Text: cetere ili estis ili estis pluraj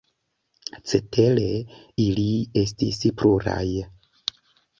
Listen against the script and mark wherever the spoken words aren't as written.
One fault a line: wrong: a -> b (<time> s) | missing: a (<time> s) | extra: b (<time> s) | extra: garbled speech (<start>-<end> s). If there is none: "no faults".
missing: ili estis (3.0 s)